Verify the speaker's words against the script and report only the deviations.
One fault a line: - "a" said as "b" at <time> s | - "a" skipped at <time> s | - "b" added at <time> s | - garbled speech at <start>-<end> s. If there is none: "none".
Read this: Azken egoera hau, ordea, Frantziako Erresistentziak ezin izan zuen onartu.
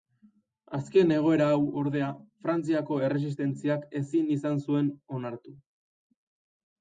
none